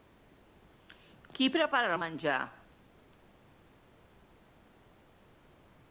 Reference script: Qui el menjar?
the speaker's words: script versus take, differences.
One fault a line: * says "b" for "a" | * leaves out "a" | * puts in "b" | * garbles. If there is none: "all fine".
* puts in "prepara"